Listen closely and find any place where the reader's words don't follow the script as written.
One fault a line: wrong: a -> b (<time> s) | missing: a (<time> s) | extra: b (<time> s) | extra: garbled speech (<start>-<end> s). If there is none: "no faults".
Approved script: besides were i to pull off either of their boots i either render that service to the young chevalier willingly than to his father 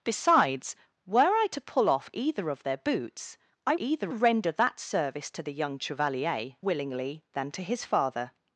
no faults